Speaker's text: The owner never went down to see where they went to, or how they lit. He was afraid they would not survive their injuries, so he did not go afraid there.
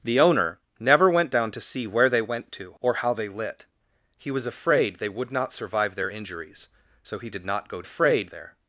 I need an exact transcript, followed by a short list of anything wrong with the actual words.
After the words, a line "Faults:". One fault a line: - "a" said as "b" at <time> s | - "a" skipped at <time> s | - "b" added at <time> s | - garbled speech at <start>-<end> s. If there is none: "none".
The owner never went down to see where they went to, or how they lit. He was afraid they would not survive their injuries, so he did not go afraid there.
Faults:
none